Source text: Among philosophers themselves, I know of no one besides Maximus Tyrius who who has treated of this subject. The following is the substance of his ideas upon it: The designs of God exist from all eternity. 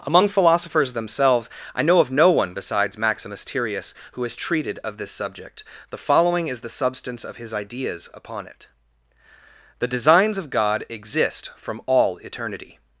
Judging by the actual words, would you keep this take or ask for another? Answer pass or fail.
fail